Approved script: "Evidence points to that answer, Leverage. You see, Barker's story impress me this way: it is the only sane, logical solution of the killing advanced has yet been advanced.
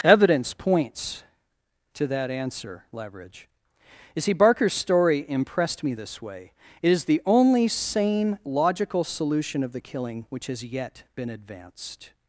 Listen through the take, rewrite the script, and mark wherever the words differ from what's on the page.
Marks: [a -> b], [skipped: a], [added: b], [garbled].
"Evidence points to that answer, Leverage. You see, Barker's story [impress -> impressed] me this way: it is the only sane, logical solution of the killing [advanced -> which] has yet been advanced.